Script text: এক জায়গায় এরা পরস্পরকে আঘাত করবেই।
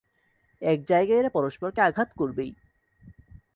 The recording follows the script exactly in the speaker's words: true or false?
true